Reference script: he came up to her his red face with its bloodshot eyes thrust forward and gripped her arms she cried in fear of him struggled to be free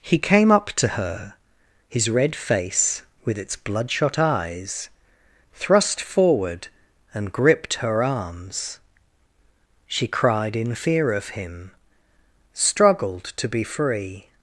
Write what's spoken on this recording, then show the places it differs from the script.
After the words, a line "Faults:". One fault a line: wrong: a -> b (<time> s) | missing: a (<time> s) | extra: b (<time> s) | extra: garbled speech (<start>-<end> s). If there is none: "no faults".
he came up to her his red face with its bloodshot eyes thrust forward and gripped her arms she cried in fear of him struggled to be free
Faults:
no faults